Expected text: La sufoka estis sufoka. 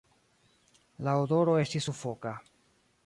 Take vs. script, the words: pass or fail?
fail